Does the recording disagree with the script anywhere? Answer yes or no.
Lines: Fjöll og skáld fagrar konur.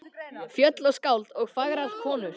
yes